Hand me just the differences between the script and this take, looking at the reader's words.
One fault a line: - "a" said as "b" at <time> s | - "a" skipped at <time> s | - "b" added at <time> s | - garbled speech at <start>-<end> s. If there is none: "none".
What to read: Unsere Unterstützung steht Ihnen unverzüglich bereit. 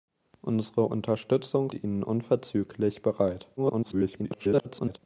- "steht" skipped at 1.7 s
- garbled speech at 3.6-5.0 s